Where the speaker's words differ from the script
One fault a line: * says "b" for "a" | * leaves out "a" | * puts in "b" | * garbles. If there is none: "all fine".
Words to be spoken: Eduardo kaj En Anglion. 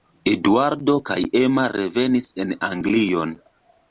* puts in "Emma revenis"